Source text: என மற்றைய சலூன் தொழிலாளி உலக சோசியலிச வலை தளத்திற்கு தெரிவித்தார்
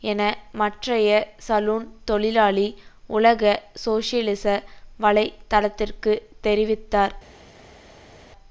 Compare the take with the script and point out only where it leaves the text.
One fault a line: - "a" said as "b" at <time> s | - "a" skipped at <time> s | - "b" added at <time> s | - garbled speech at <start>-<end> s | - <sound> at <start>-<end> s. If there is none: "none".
none